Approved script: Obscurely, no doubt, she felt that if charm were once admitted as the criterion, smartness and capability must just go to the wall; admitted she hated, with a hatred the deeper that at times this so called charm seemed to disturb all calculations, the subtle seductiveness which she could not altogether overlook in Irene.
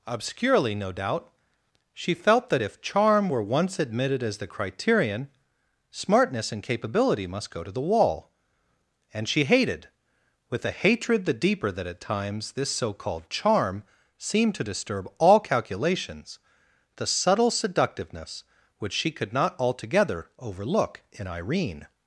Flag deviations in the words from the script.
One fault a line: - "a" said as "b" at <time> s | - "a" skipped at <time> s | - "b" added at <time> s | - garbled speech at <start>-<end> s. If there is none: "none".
- "just" skipped at 7.5 s
- "admitted" said as "and" at 9.1 s